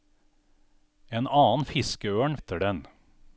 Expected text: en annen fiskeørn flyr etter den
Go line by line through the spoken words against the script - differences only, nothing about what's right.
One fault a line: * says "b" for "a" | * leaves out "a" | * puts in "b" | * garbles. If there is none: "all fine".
* leaves out "flyr"